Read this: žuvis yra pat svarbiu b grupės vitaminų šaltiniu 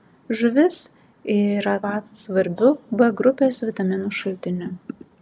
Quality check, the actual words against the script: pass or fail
pass